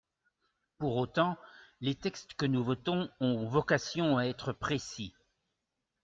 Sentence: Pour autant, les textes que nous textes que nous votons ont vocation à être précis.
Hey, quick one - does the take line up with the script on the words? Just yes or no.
no